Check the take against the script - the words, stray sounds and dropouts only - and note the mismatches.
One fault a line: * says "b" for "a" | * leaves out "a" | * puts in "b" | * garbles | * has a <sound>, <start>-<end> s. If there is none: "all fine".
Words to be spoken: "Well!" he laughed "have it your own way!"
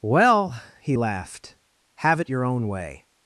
all fine